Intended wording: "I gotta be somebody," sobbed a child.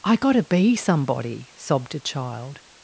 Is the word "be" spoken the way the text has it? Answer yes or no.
yes